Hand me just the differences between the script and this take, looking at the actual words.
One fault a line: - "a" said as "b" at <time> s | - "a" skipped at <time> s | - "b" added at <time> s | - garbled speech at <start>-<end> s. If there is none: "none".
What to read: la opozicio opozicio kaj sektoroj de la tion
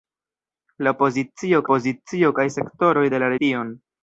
none